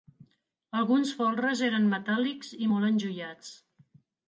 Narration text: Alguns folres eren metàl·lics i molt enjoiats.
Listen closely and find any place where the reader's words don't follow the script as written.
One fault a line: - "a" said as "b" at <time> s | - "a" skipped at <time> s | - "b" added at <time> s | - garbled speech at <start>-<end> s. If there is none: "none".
none